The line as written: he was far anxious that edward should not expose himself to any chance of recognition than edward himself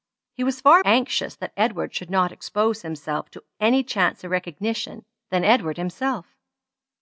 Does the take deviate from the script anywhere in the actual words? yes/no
no